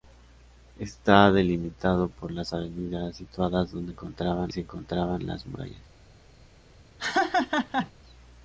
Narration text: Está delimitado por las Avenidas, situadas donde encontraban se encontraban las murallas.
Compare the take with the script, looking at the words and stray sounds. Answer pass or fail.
fail